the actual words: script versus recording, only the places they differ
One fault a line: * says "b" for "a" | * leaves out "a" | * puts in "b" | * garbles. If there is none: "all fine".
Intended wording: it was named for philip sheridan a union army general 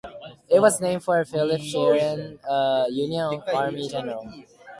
all fine